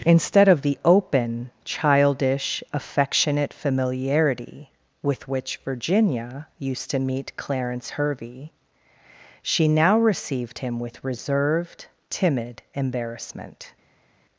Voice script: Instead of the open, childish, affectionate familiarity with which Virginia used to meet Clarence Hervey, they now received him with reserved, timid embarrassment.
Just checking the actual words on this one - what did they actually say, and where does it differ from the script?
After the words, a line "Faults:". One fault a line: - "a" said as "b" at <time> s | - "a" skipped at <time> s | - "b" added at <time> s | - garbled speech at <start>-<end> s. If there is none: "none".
Instead of the open, childish, affectionate familiarity with which Virginia used to meet Clarence Hervey, she now received him with reserved, timid embarrassment.
Faults:
- "they" said as "she" at 9.4 s